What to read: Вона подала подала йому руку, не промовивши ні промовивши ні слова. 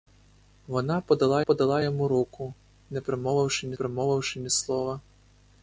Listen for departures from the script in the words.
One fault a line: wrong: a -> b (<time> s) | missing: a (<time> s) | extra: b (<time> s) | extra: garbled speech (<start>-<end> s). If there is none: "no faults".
no faults